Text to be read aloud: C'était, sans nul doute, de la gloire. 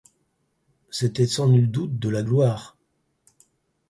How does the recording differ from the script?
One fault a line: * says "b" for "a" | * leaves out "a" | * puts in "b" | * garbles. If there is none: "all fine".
all fine